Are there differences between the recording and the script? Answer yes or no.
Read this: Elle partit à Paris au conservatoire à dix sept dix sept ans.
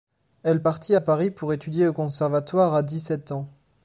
yes